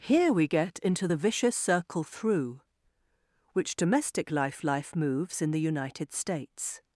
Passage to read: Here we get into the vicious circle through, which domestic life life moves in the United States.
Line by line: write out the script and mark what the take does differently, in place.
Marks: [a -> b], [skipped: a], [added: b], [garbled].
Here we get into the vicious circle through, which domestic life life moves in the United States.